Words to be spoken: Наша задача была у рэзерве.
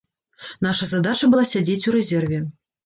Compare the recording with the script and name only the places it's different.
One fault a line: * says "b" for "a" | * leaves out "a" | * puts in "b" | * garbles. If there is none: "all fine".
* puts in "сядзець"